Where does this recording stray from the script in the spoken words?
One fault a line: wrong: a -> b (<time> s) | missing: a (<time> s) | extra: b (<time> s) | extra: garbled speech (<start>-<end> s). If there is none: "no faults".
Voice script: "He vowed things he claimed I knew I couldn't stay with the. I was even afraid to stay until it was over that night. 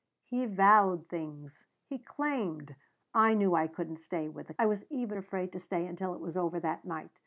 no faults